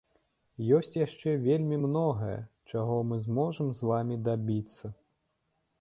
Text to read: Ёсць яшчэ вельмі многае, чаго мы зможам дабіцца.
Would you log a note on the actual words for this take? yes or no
yes